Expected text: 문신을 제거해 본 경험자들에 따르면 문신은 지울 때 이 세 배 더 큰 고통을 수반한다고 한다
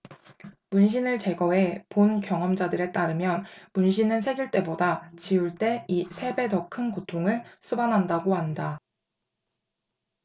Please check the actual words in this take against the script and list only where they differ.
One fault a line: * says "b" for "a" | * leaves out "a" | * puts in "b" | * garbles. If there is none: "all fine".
* puts in "새길 때보다"